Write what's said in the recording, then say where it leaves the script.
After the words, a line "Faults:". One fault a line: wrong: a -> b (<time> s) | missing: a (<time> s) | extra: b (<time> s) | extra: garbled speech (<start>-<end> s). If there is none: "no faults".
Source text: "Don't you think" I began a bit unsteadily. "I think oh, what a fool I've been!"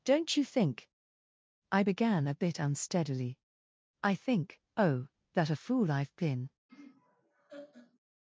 "Don't you think" I began a bit unsteadily. "I think oh, that a fool I've been!"
Faults:
wrong: what -> that (5.3 s)